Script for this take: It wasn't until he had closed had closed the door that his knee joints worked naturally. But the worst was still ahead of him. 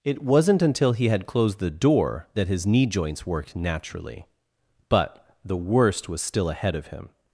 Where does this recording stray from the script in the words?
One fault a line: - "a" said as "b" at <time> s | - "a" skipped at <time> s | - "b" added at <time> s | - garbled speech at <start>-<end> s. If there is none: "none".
- "had closed" skipped at 1.6 s